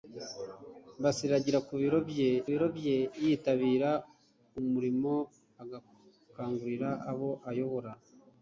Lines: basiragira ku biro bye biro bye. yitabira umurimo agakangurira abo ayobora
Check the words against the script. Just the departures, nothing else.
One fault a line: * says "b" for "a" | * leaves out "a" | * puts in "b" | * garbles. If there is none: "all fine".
all fine